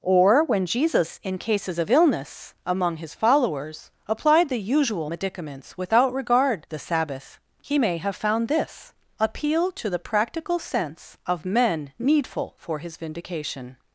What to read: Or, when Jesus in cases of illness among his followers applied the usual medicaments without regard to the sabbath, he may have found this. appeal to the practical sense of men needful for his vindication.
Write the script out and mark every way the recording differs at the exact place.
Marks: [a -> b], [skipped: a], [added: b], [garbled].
Or, when Jesus in cases of illness among his followers applied the usual medicaments without regard [skipped: to] the sabbath, he may have found this. appeal to the practical sense of men needful for his vindication.